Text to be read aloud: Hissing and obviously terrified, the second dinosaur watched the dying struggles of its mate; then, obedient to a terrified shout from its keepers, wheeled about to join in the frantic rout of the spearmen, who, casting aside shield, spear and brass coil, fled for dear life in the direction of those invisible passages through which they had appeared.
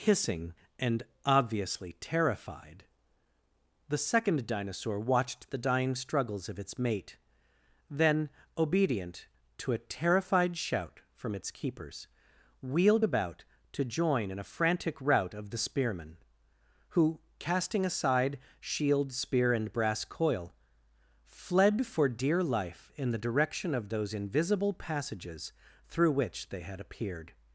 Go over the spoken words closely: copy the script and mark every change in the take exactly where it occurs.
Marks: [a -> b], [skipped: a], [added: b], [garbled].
Hissing and obviously terrified, the second dinosaur watched the dying struggles of its mate; then, obedient to a terrified shout from its keepers, wheeled about to join in [the -> a] frantic rout of the spearmen, who, casting aside shield, spear and brass coil, fled for dear life in the direction of those invisible passages through which they had appeared.